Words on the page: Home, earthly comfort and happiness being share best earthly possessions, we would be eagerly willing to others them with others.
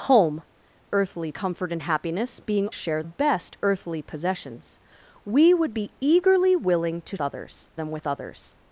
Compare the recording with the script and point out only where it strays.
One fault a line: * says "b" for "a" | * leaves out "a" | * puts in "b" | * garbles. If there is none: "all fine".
all fine